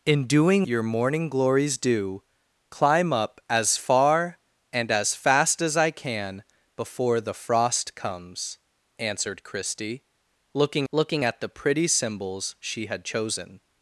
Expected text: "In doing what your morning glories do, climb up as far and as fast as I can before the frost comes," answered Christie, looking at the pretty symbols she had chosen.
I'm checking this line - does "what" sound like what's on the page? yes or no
no